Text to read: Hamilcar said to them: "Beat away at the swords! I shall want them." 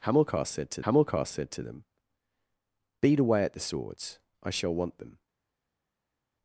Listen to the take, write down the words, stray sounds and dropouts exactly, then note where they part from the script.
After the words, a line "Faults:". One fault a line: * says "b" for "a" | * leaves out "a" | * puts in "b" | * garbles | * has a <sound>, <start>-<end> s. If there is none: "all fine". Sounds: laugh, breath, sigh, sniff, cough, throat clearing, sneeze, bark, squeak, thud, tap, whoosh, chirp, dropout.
Hamilcar said to hamilcar said to them: "Beat away at the swords! I shall want them."
Faults:
* puts in "hamilcar said to"